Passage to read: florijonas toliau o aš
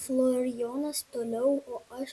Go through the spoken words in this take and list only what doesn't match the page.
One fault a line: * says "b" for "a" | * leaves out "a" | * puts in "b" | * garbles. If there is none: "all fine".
all fine